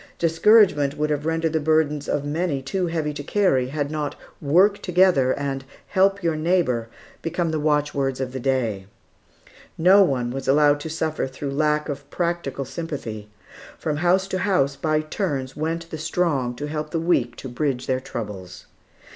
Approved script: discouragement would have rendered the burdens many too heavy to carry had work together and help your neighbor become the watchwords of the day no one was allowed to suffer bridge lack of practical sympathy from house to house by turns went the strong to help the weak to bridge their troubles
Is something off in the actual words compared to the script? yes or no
yes